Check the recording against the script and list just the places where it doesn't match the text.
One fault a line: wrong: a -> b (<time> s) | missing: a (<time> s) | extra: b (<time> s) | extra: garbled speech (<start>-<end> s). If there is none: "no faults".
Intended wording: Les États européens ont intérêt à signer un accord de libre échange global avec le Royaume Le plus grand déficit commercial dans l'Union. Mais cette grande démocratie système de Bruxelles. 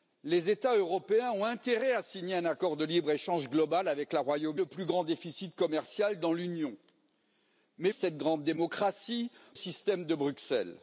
no faults